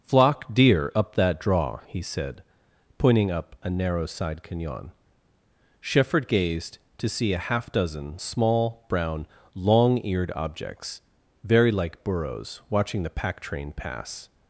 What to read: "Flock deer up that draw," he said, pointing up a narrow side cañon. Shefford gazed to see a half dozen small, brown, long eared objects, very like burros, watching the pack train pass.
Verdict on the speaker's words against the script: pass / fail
pass